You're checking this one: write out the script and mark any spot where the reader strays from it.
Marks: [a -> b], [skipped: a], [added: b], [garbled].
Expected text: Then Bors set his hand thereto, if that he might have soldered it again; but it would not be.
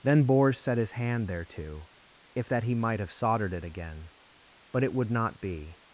Then Bors set his hand thereto, if that he might have soldered it again; but it would not be.